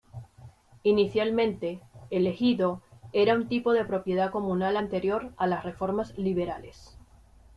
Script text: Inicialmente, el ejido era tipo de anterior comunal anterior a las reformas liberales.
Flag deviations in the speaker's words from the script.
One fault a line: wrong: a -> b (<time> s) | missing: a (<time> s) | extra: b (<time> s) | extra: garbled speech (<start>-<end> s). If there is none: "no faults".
extra: un (3.3 s)
wrong: anterior -> propiedad (3.8 s)